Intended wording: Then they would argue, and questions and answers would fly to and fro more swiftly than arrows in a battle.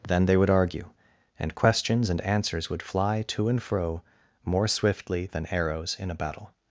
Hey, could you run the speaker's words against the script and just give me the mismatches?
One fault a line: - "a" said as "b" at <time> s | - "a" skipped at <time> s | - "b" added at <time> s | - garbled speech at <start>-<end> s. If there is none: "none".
none